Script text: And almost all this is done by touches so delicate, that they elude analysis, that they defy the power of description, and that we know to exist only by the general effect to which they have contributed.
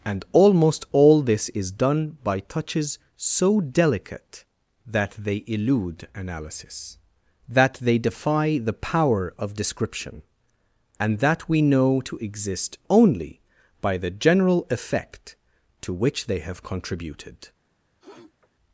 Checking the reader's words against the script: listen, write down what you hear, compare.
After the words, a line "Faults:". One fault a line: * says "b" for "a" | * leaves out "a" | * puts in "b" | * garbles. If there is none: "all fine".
And almost all this is done by touches so delicate, that they elude analysis, that they defy the power of description, and that we know to exist only by the general effect to which they have contributed.
Faults:
all fine